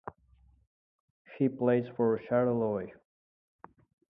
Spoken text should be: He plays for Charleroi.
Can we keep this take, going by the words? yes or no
yes